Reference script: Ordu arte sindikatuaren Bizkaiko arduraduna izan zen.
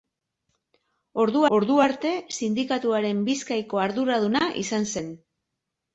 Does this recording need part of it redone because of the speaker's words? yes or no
yes